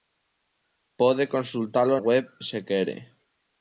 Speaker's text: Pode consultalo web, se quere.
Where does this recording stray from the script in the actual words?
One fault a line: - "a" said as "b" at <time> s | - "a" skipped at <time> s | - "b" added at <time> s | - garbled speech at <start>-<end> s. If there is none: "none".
none